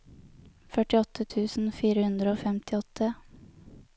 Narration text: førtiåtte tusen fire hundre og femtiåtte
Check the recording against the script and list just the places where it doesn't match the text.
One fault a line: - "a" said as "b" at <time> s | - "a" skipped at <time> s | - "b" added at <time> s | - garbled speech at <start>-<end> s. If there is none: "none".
none